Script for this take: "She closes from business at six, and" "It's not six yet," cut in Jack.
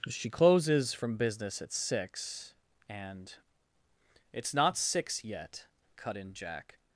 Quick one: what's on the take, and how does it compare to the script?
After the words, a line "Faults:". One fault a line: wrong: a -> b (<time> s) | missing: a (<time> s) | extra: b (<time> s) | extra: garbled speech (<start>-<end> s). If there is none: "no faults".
"She closes from business at six, and" "It's not six yet," cut in Jack.
Faults:
no faults